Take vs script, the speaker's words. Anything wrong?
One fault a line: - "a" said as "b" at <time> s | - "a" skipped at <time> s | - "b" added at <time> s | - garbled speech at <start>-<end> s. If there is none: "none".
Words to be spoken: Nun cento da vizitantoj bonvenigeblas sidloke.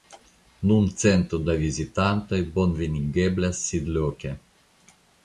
none